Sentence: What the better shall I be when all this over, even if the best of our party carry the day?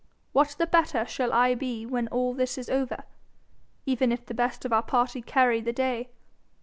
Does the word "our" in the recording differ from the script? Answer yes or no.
no